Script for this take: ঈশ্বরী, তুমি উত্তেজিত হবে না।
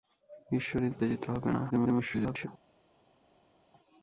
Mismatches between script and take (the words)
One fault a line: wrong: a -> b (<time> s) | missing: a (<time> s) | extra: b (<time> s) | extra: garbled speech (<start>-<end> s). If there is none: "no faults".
missing: তুমি (0.9 s)
extra: garbled speech (1.7-2.5 s)